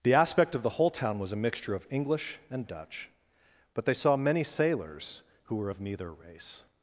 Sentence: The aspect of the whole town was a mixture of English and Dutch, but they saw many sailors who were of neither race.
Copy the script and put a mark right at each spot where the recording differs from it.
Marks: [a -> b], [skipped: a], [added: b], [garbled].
The aspect of the whole town was a mixture of English and Dutch, but they saw many sailors who were of neither race.